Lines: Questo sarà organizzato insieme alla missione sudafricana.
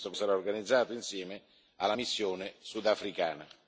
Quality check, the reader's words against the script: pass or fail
pass